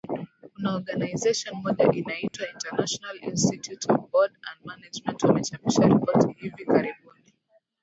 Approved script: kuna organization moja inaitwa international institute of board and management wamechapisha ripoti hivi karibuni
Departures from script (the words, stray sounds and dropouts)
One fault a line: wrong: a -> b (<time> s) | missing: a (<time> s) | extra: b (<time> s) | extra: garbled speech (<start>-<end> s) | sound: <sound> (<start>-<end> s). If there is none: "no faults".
sound: dropout (2.3-2.3 s)